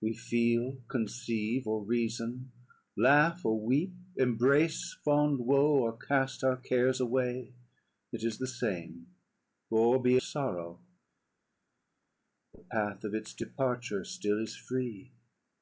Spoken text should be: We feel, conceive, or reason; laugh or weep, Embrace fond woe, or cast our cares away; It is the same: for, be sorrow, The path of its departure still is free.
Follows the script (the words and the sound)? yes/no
yes